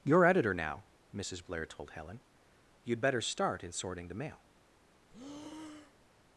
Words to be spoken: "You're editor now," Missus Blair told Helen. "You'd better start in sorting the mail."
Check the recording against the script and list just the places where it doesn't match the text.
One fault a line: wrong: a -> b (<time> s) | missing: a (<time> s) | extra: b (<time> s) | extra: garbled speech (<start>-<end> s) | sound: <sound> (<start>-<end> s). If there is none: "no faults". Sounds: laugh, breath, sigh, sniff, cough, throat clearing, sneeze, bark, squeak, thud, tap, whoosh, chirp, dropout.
sound: breath (5.1-6.1 s)